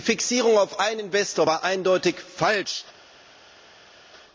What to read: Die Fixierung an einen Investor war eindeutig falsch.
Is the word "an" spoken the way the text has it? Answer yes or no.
no